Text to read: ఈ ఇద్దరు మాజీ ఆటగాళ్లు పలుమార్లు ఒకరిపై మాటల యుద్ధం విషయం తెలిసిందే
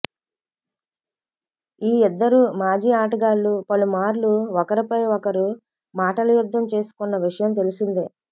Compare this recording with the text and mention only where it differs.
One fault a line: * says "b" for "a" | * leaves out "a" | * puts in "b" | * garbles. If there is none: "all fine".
* puts in "ఒకరు"
* puts in "చేసుకున్న"